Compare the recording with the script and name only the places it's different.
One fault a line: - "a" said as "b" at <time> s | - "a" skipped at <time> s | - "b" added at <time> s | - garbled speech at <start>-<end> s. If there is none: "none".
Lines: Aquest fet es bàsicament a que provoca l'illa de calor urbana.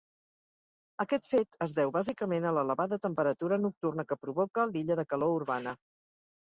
- "deu" added at 1.8 s
- "l'elevada temperatura nocturna" added at 2.6 s